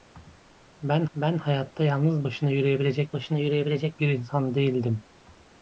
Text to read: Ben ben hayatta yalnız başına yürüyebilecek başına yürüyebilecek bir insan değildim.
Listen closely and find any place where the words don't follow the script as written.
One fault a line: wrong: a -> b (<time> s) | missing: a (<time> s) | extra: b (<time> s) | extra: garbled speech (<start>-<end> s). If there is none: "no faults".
no faults